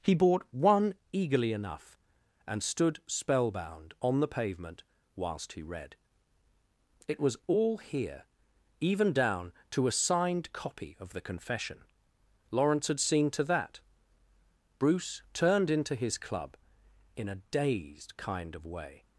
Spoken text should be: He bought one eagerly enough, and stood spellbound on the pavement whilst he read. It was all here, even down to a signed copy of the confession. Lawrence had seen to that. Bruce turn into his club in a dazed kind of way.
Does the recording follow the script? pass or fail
fail